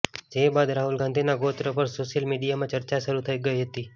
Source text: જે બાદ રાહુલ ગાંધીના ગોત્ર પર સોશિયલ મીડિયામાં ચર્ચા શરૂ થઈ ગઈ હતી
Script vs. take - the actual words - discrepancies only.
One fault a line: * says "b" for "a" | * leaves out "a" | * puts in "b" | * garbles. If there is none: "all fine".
all fine